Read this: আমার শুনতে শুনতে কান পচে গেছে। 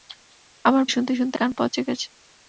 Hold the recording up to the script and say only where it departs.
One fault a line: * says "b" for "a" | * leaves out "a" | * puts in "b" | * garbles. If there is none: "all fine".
all fine